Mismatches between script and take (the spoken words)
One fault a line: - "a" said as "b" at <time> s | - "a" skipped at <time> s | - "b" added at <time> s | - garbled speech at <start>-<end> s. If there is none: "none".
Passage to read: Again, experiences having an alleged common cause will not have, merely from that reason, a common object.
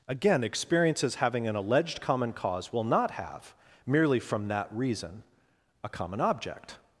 none